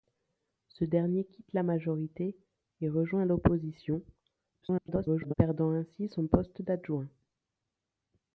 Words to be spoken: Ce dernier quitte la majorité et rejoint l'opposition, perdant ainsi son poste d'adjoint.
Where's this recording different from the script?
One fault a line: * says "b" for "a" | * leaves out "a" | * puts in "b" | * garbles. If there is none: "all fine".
* garbles